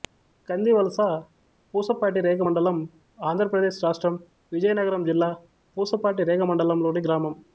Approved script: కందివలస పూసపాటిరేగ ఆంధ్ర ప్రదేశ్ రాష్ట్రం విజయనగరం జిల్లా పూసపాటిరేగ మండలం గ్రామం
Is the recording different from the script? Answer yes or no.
yes